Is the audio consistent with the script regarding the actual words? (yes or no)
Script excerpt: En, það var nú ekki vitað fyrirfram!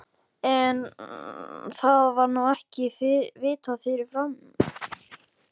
yes